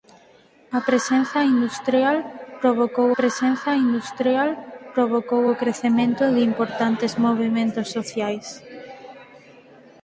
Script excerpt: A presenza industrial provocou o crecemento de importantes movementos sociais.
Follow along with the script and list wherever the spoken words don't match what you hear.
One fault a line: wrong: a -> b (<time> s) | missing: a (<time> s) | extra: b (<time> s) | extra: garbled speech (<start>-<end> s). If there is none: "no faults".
extra: presenza industrial provocou (3.2 s)